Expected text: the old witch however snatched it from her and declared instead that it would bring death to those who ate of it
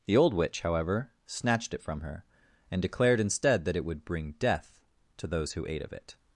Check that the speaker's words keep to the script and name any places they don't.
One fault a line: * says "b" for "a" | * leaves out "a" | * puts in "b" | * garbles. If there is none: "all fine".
all fine